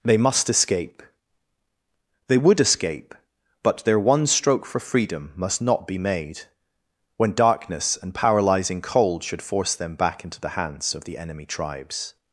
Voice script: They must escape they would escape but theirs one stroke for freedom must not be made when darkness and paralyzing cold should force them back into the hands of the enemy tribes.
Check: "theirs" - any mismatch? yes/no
yes